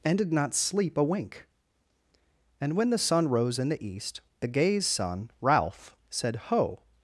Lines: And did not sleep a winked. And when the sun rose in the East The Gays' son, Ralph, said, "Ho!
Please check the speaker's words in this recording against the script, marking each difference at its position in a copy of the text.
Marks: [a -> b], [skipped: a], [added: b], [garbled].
And did not sleep a [winked. -> wink] And when the sun rose in the East The Gays' son, Ralph, said, "Ho!